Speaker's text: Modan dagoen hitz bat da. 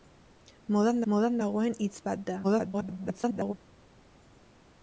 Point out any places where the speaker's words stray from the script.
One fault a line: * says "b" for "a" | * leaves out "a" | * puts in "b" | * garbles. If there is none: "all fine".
* puts in "modan"
* garbles